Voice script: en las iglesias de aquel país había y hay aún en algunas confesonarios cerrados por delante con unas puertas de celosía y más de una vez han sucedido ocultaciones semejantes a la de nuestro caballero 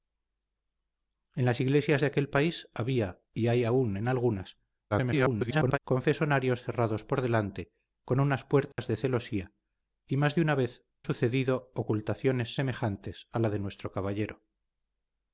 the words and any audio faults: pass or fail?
fail